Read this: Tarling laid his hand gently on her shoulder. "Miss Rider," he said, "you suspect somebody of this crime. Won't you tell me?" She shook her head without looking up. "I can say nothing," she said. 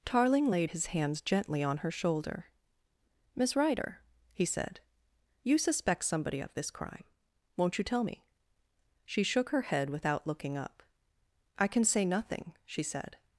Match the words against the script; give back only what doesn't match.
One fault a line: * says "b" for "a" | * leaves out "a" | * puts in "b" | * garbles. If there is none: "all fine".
* says "hands" for "hand"